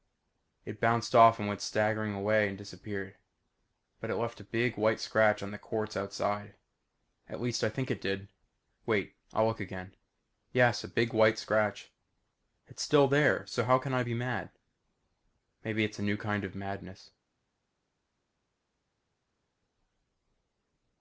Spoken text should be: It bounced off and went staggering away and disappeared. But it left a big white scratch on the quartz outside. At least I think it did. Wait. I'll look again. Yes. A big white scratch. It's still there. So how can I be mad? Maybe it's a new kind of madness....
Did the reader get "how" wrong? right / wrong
right